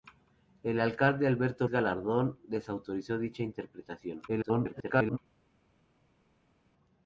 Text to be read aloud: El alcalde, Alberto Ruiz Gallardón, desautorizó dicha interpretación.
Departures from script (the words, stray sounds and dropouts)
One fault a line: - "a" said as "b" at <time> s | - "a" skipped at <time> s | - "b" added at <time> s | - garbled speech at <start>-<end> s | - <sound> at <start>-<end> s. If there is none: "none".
- "Ruiz" skipped at 1.7 s
- garbled speech at 4.3-5.2 s